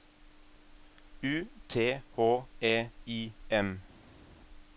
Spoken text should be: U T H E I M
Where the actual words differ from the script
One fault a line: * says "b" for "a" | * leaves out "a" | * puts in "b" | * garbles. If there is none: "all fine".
all fine